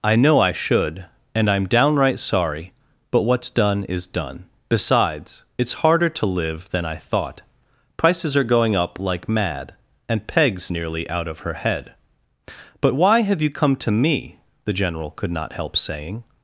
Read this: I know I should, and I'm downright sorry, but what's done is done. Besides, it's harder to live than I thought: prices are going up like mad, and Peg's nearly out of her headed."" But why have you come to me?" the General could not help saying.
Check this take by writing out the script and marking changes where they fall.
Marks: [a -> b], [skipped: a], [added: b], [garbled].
I know I should, and I'm downright sorry, but what's done is done. Besides, it's harder to live than I thought: prices are going up like mad, and Peg's nearly out of her [headed."" -> head] But why have you come to me?" the General could not help saying.